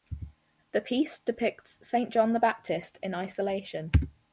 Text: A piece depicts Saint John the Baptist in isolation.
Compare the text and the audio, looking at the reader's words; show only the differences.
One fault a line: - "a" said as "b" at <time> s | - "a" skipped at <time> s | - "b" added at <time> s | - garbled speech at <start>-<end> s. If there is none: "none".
- "A" said as "The" at 0.7 s